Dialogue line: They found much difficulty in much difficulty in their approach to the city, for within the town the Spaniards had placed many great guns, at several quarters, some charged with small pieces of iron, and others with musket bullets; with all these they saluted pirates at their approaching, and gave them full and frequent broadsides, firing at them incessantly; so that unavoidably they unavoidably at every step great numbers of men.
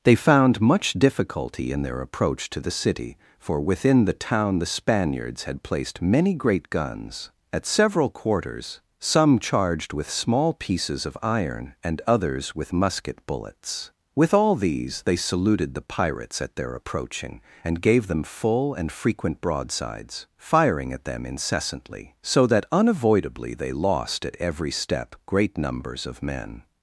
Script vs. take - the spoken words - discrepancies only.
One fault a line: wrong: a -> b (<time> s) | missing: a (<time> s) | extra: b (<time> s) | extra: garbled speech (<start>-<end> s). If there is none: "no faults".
missing: much difficulty in (1.8 s)
extra: the (15.7 s)
wrong: unavoidably -> lost (23.7 s)